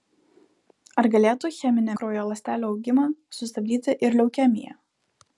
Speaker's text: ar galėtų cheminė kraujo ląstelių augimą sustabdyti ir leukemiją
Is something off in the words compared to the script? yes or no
no